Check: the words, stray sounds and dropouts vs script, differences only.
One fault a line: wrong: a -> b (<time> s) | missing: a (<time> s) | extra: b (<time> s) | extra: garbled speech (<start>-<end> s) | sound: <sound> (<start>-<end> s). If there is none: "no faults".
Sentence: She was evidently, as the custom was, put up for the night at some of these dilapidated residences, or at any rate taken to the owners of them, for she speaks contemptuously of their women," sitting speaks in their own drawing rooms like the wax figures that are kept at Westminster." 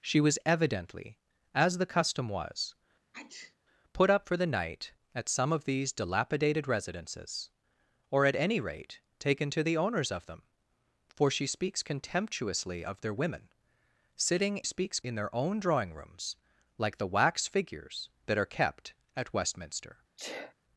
sound: sneeze (3.1-3.6 s)
sound: sneeze (20.2-20.5 s)